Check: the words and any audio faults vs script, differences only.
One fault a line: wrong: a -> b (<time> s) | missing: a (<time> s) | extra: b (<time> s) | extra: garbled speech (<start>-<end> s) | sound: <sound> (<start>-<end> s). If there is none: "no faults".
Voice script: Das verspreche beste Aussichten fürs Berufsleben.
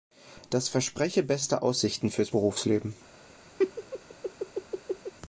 sound: laugh (3.6-5.1 s)